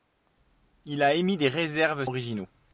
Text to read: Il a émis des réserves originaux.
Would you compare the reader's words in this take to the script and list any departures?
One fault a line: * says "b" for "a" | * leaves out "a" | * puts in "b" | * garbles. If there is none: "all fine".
all fine